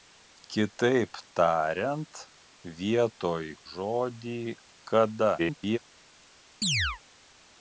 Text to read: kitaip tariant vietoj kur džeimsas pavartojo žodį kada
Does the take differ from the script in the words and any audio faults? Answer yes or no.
yes